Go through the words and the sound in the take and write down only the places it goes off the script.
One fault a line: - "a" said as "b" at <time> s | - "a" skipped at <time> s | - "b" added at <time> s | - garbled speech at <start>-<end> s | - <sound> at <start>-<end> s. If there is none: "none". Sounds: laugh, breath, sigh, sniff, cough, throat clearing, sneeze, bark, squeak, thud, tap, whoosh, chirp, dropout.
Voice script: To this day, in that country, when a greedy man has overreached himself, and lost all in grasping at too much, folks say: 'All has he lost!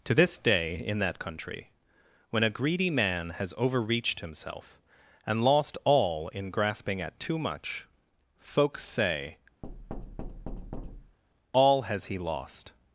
- thud at 9.6-11.2 s